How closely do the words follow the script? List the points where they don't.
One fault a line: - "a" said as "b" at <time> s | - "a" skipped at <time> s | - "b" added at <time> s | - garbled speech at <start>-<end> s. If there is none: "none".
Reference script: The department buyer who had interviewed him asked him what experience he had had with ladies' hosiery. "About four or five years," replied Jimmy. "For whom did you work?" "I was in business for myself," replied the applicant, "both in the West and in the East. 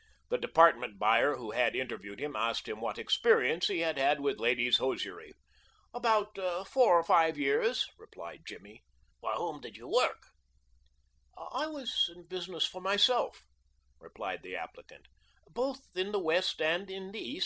none